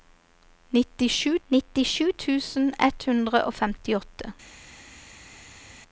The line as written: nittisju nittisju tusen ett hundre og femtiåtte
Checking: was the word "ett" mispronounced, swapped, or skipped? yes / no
no